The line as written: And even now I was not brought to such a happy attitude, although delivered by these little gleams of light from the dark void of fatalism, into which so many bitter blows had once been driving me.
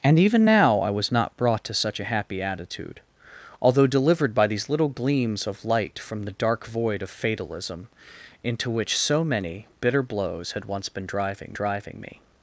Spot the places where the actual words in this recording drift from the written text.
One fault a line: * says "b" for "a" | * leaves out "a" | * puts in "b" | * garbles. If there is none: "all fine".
* puts in "driving"